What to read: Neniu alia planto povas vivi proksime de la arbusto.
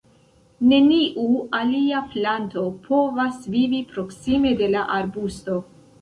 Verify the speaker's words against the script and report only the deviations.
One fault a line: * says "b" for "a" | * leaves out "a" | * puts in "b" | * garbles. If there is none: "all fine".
all fine